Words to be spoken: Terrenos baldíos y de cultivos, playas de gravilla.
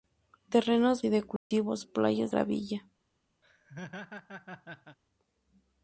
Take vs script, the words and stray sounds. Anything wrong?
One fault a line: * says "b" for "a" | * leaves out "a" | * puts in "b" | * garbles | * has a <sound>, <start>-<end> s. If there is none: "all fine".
* leaves out "baldíos"
* has a dropout, 1.4-1.5 s
* leaves out "de"
* has a laugh, 3.4-5.0 s